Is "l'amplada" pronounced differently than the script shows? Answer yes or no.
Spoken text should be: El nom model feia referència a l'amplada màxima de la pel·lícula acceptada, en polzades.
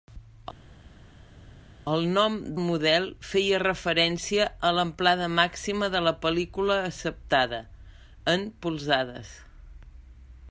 no